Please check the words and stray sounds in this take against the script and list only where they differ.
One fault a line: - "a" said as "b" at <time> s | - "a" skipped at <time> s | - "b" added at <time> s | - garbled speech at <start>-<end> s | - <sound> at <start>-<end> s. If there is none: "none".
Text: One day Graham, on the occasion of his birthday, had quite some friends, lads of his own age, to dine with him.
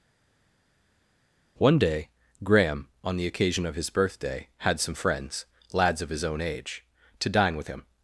- "quite" skipped at 4.8 s